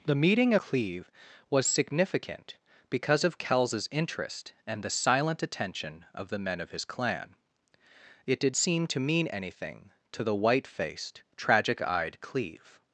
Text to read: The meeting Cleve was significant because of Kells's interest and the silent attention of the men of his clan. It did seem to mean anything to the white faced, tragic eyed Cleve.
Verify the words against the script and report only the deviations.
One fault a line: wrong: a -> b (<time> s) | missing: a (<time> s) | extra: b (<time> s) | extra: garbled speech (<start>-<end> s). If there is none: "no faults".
no faults